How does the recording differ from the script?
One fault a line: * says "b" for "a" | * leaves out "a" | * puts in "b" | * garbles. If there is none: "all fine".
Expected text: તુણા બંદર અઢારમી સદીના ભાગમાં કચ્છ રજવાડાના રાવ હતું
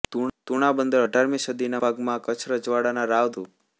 all fine